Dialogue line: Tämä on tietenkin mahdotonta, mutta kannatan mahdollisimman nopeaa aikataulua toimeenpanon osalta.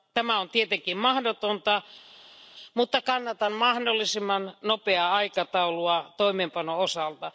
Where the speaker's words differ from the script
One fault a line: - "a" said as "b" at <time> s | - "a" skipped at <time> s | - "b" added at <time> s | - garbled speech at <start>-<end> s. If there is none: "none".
none